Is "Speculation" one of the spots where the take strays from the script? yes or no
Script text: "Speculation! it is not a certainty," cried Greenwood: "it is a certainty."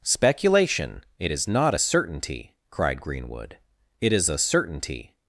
no